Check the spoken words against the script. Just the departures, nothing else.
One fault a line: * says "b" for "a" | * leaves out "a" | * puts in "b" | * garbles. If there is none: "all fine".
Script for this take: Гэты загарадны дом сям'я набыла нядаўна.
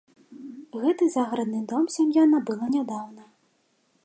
all fine